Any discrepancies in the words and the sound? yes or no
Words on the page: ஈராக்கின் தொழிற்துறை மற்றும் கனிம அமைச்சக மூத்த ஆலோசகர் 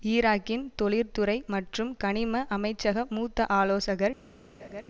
yes